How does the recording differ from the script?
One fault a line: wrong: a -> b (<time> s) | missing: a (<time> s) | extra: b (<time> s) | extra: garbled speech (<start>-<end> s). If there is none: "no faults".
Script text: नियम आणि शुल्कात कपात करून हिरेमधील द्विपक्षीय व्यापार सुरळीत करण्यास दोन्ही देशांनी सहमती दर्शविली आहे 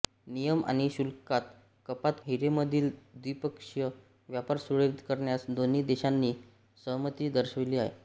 missing: करून (2.2 s)